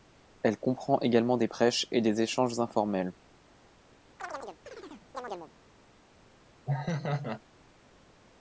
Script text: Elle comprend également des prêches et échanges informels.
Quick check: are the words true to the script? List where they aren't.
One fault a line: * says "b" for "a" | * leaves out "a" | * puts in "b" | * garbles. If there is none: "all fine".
* puts in "des"